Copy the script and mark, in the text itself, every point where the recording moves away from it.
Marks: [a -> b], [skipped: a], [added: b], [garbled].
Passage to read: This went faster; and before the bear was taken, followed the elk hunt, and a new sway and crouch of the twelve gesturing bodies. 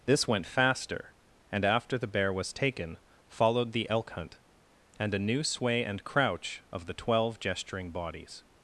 This went faster; and [before -> after] the bear was taken, followed the elk hunt, and a new sway and crouch of the twelve gesturing bodies.